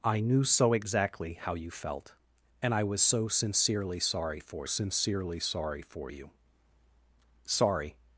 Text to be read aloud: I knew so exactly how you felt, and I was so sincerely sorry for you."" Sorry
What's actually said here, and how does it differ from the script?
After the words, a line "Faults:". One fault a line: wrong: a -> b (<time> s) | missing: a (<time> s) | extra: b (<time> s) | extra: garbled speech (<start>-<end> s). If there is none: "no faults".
I knew so exactly how you felt, and I was so sincerely sorry for sincerely sorry for you."" Sorry
Faults:
extra: sincerely sorry for (4.6 s)